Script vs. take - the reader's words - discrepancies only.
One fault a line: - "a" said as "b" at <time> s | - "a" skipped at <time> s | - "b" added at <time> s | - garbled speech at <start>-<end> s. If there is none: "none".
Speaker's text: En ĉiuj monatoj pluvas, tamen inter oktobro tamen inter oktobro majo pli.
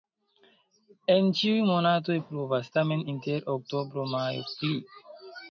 - "tamen inter oktobro" skipped at 4.1 s